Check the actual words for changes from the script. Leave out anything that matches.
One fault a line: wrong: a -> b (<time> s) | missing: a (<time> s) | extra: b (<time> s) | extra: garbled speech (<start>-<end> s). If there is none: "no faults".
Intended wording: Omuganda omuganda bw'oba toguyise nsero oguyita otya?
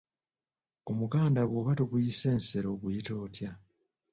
missing: omuganda (1.4 s)